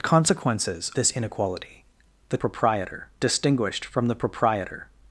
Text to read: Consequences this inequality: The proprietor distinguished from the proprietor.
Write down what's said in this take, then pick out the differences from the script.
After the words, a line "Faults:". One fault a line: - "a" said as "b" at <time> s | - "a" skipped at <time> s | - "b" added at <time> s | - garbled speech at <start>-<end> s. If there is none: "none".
Consequences this inequality: The proprietor distinguished from the proprietor.
Faults:
none